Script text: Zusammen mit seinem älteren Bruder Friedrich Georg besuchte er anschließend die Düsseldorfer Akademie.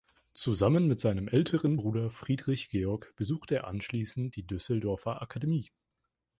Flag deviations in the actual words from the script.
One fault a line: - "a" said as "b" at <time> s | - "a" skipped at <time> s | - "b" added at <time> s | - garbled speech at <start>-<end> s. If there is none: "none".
none